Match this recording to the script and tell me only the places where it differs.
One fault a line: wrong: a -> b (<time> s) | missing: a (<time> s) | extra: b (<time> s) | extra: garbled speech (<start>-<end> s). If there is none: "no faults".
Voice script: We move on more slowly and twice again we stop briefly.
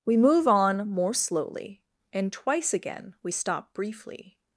no faults